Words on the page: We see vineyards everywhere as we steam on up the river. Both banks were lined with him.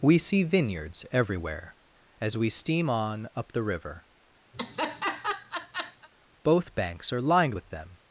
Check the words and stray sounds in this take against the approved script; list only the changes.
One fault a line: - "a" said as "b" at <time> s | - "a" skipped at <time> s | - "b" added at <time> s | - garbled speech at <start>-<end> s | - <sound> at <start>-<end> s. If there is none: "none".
- laugh at 4.5-6.1 s
- "were" said as "are" at 7.1 s
- "him" said as "them" at 7.7 s